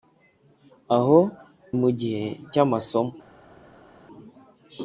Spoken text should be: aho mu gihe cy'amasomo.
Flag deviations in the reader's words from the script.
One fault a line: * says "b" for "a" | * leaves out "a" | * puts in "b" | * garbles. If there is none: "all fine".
all fine